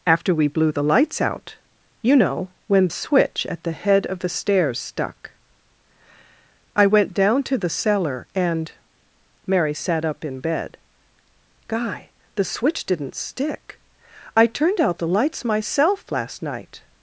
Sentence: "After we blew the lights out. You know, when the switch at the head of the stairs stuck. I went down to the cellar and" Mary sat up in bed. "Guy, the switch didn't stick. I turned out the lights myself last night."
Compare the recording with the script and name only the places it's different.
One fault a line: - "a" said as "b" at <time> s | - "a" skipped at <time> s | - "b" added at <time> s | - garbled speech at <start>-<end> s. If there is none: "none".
- "the" skipped at 2.9 s